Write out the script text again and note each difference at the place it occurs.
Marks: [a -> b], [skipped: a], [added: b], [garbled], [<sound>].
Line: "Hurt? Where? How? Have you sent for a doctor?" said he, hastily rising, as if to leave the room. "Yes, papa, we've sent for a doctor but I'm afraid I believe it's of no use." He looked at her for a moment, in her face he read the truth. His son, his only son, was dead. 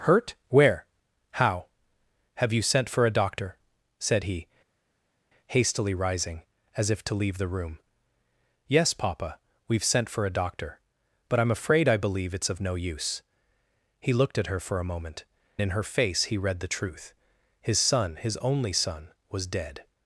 "Hurt? Where? How? Have you sent for a doctor?" said he, hastily rising, as if to leave the room. "Yes, papa, we've sent for a doctor but I'm afraid I believe it's of no use." He looked at her for a moment, in her face he read the truth. His son, his only son, was dead.